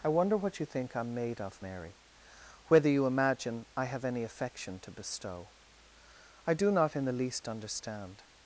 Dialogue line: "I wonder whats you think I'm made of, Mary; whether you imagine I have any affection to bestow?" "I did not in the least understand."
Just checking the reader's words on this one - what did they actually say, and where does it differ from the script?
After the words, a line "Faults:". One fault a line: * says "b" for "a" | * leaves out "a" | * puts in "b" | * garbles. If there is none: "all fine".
"I wonder what you think I'm made of, Mary; whether you imagine I have any affection to bestow?" "I do not in the least understand."
Faults:
* says "what" for "whats"
* says "do" for "did"